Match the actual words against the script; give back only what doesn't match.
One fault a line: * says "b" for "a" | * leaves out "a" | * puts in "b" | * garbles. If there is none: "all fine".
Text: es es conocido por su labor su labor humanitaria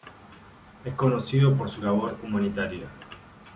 * leaves out "es"
* leaves out "su labor"